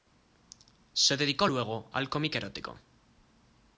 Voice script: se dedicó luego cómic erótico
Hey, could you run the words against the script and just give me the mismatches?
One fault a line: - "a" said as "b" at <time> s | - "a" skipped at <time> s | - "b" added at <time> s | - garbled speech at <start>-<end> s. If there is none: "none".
- "al" added at 1.9 s